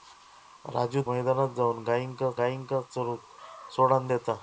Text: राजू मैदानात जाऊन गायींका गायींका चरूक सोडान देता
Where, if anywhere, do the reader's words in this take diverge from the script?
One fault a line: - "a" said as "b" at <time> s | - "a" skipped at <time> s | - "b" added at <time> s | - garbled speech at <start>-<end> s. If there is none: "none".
none